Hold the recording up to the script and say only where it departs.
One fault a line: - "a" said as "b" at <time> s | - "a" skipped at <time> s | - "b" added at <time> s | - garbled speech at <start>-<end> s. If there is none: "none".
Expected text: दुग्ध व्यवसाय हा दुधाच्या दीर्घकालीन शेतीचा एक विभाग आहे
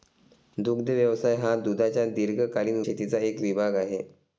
none